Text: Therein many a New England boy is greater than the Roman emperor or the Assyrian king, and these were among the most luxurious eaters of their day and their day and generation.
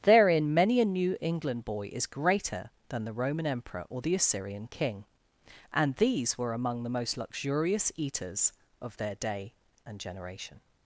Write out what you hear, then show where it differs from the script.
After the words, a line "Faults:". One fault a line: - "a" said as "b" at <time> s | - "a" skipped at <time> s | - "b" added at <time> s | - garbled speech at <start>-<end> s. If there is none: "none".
Therein many a New England boy is greater than the Roman emperor or the Assyrian king, and these were among the most luxurious eaters of their day and generation.
Faults:
- "their day and" skipped at 10.0 s